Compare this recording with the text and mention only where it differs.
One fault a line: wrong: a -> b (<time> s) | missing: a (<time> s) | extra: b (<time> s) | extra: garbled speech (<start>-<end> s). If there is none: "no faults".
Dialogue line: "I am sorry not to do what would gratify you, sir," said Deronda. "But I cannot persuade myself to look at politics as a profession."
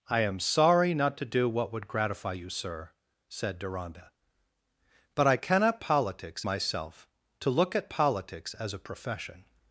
wrong: persuade -> politics (5.8 s)